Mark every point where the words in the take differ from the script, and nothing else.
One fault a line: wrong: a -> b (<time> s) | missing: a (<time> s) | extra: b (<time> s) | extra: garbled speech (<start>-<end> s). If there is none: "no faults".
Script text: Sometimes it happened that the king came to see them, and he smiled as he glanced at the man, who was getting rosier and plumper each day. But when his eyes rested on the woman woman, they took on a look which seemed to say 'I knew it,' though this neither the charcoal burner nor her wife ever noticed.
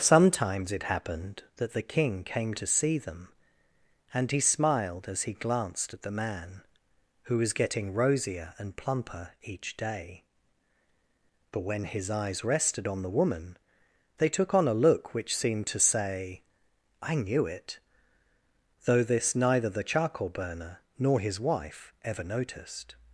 missing: woman (13.6 s)
wrong: her -> his (21.2 s)